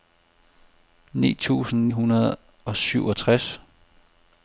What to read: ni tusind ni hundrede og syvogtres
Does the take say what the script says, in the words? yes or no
no